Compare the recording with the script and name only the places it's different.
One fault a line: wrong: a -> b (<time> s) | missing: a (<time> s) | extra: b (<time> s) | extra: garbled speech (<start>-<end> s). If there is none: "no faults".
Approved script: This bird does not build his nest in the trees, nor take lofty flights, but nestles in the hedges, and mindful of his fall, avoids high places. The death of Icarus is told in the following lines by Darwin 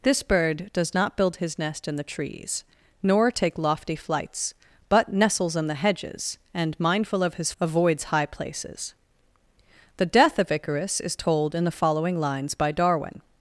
missing: fall (7.5 s)